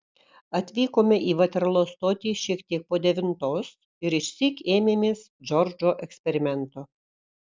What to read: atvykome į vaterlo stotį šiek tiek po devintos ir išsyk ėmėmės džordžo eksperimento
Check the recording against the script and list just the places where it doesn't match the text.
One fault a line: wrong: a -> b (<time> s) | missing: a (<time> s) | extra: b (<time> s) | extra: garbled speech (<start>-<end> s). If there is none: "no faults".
no faults